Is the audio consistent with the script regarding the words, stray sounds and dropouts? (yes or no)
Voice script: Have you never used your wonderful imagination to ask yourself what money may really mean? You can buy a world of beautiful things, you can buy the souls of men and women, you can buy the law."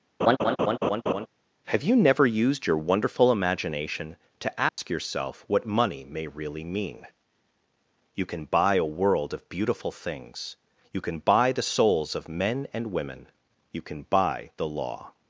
no